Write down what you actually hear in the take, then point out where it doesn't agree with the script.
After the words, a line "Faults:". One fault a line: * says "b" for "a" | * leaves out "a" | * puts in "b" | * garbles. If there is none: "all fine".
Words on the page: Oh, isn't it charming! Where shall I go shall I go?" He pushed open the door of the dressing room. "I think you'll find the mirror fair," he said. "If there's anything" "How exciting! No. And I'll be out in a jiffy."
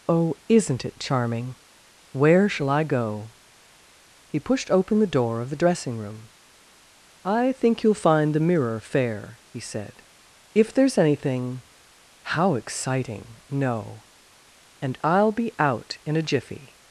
Oh, isn't it charming! Where shall I go?" He pushed open the door of the dressing room. "I think you'll find the mirror fair," he said. "If there's anything" "How exciting! No. And I'll be out in a jiffy."
Faults:
* leaves out "shall I go"